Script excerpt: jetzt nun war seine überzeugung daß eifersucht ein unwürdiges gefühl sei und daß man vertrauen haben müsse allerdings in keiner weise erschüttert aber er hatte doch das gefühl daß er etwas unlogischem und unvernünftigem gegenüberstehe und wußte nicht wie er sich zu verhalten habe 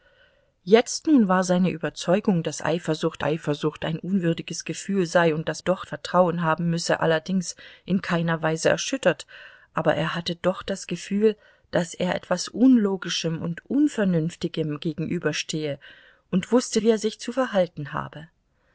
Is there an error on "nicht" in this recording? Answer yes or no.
yes